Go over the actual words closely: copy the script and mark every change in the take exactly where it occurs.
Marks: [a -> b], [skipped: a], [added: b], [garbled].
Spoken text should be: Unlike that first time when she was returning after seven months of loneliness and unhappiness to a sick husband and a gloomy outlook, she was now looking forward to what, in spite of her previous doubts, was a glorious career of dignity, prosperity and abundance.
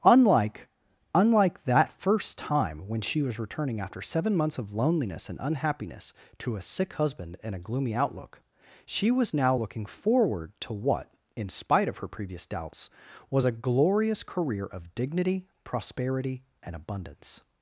Unlike [added: unlike] that first time when she was returning after seven months of loneliness and unhappiness to a sick husband and a gloomy outlook, she was now looking forward to what, in spite of her previous doubts, was a glorious career of dignity, prosperity and abundance.